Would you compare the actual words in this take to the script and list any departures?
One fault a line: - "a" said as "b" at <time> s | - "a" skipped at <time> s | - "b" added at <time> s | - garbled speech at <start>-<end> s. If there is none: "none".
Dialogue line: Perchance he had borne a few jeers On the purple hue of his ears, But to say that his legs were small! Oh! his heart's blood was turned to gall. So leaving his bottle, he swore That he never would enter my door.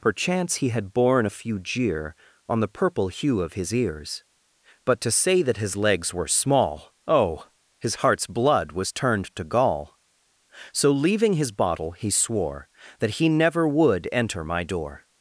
- "jeers" said as "jeer" at 1.6 s